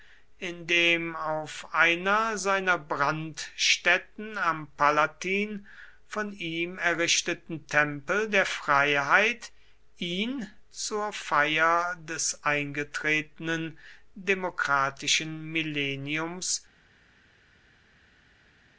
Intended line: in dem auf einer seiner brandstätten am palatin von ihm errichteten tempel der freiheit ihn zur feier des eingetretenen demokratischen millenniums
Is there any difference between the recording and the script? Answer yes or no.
no